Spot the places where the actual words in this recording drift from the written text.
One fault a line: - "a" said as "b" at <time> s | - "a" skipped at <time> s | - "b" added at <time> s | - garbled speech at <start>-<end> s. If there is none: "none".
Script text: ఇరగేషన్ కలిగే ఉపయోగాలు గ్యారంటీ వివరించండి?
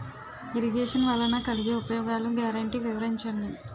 - "వలన" added at 1.1 s